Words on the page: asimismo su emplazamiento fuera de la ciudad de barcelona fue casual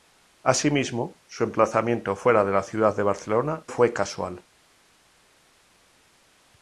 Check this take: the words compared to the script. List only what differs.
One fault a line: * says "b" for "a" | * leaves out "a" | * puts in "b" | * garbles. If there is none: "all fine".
all fine